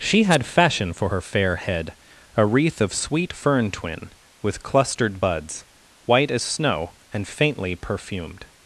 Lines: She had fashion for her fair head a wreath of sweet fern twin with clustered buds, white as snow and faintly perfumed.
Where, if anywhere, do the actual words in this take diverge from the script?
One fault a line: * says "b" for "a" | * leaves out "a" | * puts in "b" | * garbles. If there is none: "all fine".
all fine